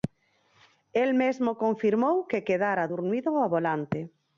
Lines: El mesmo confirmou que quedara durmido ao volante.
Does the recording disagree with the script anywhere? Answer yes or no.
no